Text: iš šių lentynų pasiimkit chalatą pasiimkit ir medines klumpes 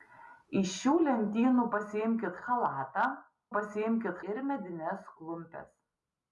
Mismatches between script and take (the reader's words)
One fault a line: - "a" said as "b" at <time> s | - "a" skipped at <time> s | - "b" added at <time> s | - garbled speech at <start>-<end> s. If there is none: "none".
none